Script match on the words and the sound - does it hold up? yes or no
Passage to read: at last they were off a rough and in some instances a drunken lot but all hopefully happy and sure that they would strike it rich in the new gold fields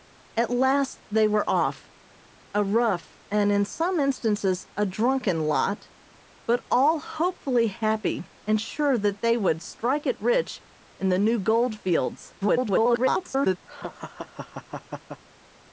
no